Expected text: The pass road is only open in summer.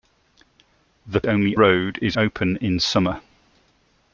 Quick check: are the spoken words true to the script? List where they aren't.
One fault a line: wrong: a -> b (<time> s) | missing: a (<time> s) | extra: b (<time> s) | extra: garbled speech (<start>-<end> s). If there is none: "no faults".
wrong: pass -> only (1.2 s)
missing: only (2.2 s)